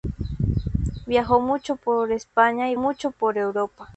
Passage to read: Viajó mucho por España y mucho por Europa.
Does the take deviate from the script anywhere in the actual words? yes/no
no